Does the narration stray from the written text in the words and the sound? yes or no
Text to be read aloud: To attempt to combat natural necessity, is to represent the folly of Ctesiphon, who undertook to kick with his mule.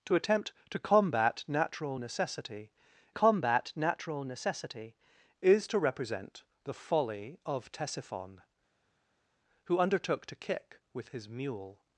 yes